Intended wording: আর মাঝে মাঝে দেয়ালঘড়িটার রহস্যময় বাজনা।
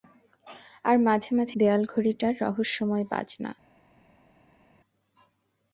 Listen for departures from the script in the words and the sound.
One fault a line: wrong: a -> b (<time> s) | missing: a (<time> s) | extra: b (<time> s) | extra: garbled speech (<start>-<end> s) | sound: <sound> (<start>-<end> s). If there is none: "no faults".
no faults